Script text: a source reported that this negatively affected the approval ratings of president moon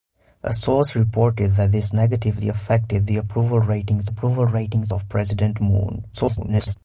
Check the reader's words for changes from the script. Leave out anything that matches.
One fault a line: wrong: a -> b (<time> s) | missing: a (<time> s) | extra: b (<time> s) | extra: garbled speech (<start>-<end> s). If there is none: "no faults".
extra: approval ratings (4.1 s)
extra: garbled speech (6.1-6.8 s)